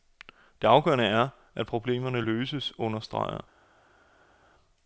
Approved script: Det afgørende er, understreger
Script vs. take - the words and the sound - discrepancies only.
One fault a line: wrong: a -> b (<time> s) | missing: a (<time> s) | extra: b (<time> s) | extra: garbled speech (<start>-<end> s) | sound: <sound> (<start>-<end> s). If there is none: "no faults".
extra: at problemerne løses (1.6 s)